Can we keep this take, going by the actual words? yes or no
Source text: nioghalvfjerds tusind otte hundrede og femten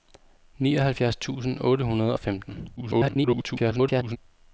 no